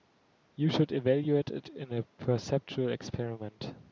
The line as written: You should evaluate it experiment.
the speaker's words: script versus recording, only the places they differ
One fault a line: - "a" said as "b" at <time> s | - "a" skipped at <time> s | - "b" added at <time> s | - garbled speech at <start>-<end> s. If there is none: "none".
- "in a perceptual" added at 1.7 s